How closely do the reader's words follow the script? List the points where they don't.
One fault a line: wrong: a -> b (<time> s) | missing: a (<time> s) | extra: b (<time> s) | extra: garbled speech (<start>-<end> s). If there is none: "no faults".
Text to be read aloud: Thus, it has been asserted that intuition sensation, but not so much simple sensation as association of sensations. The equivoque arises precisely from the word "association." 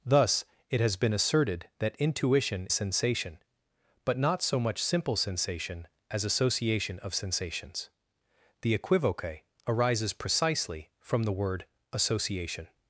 no faults